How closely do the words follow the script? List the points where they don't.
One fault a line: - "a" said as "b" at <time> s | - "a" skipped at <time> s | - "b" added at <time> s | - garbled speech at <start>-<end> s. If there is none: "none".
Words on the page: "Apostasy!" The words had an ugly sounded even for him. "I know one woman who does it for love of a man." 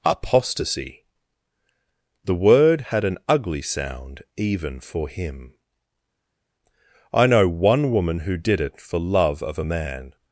- "words" said as "word" at 2.3 s
- "sounded" said as "sound" at 3.6 s
- "does" said as "did" at 8.3 s